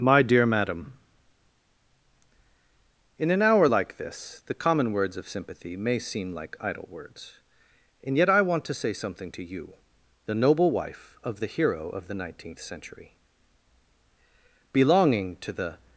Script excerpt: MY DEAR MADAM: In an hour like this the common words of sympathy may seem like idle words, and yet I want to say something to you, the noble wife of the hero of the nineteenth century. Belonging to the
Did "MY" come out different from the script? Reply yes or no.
no